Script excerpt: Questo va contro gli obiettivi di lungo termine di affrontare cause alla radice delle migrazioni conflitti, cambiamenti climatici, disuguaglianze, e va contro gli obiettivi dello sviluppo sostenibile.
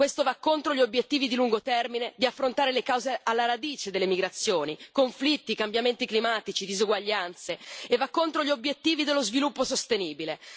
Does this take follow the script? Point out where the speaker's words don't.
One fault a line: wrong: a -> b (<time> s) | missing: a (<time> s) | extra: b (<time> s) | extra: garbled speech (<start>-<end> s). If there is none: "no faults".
extra: le (2.7 s)